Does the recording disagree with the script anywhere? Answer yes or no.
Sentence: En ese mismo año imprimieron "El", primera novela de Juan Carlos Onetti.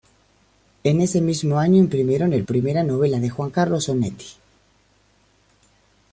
no